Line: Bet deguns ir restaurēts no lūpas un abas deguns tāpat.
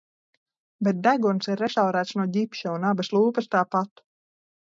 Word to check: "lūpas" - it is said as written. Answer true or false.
false